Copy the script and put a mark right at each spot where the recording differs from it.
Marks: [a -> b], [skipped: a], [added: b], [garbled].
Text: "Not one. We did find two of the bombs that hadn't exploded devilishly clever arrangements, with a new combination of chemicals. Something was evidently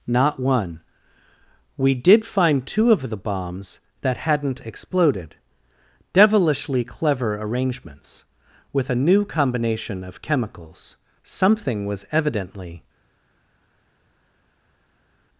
"Not one. We did find two of the bombs that hadn't exploded devilishly clever arrangements, with a new combination of chemicals. Something was evidently